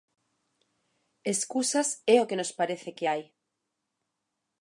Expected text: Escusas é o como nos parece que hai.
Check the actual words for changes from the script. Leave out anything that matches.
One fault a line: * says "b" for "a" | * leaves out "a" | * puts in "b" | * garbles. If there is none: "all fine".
* says "que" for "como"